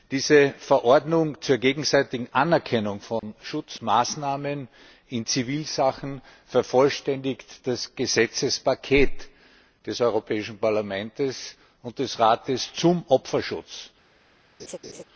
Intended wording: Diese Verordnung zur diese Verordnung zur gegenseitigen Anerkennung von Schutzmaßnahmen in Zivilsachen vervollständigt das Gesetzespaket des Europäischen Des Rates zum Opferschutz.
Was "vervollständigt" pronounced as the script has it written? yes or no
yes